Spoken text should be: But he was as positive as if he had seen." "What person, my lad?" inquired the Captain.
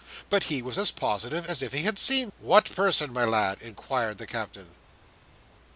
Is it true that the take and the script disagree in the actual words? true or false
false